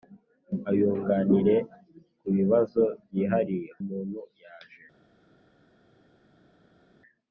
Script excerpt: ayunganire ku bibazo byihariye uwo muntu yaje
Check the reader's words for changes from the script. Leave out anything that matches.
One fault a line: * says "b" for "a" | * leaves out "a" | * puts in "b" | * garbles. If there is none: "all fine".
* leaves out "uwo"